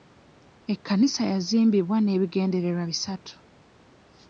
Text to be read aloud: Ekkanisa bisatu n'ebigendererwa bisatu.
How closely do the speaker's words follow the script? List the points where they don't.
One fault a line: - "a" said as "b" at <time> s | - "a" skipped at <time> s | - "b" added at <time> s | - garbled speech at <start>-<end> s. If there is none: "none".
- "bisatu" said as "yazimbibwa" at 1.3 s